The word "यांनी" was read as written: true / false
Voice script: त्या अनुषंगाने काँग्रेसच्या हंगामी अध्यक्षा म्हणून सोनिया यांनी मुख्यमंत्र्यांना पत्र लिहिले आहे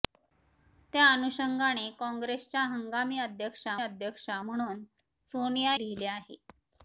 false